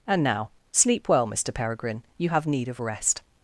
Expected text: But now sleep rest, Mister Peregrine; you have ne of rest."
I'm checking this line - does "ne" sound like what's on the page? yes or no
no